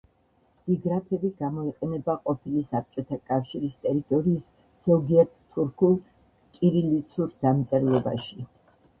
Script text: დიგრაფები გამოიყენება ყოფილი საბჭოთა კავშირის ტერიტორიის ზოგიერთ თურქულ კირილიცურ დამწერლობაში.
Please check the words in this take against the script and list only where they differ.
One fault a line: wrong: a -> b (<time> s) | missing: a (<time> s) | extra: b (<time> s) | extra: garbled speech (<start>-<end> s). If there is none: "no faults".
no faults